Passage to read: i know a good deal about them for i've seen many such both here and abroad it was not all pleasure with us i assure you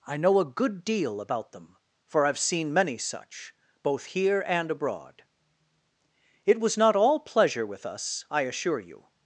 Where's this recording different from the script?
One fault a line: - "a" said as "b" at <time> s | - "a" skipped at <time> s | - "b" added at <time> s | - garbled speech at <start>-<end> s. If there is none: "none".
none